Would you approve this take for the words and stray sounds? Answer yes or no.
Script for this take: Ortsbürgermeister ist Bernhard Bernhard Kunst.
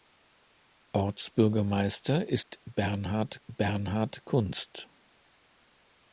no